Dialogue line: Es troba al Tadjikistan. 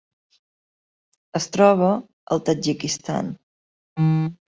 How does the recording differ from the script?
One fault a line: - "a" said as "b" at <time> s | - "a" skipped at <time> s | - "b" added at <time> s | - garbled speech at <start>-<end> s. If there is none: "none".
none